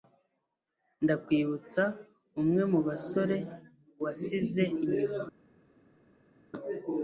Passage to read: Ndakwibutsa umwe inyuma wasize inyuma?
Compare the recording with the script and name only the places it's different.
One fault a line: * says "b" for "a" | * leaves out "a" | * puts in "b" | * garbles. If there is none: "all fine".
* says "mubasore" for "inyuma"